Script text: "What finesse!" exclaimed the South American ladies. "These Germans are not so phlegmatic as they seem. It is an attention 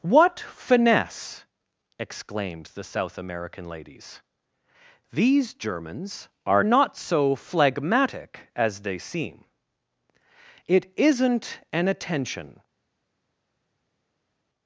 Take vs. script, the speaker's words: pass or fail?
fail